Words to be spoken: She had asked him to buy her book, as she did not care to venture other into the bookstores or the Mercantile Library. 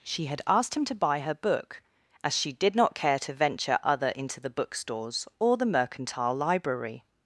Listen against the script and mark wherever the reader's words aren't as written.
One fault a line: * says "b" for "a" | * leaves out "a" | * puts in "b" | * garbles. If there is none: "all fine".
all fine